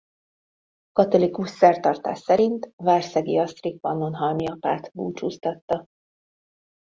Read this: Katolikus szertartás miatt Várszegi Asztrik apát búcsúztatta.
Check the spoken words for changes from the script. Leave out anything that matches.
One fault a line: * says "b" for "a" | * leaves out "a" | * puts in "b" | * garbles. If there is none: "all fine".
* says "szerint" for "miatt"
* puts in "pannonhalmi"